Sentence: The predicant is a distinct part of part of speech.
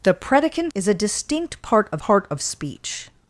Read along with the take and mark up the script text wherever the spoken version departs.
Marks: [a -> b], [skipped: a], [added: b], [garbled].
The predicant is a distinct part of part of speech.